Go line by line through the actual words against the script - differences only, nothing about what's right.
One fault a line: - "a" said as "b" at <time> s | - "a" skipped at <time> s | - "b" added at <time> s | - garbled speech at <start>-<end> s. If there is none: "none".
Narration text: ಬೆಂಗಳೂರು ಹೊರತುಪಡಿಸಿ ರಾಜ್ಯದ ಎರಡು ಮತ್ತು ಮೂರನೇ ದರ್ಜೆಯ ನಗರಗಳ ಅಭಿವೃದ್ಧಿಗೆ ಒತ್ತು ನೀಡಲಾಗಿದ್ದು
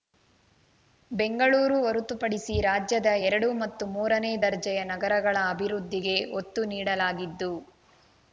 none